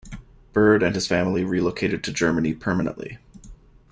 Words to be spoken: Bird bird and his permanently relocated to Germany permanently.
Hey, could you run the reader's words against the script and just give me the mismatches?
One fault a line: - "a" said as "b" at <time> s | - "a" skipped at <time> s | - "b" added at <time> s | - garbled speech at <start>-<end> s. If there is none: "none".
- "bird" skipped at 0.8 s
- "permanently" said as "family" at 1.1 s